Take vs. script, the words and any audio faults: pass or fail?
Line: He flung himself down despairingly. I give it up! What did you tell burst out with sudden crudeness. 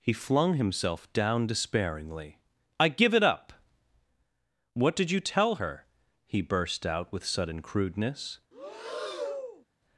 fail